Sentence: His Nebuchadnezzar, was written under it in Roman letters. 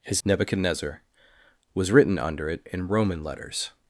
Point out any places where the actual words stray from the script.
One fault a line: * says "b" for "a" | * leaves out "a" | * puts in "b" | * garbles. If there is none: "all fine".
all fine